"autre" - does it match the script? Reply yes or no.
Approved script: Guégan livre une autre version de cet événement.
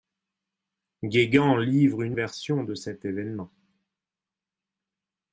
no